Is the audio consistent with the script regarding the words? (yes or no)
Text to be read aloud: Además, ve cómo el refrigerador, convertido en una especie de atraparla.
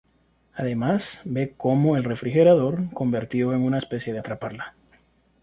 yes